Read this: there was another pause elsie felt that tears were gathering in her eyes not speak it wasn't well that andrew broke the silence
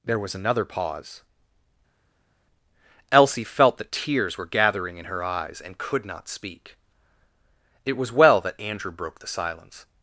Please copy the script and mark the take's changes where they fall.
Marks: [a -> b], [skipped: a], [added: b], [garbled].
there was another pause elsie felt that tears were gathering in her eyes [added: and could] not speak it [wasn't -> was] well that andrew broke the silence